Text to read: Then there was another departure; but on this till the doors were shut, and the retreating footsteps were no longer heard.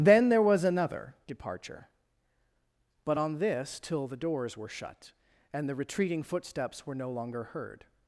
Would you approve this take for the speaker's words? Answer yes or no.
yes